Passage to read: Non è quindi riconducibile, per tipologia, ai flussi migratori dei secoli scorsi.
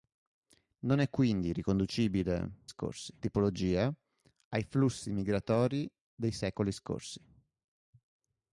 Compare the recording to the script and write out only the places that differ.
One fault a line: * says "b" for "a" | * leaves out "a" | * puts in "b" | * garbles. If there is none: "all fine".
* says "scorsi" for "per"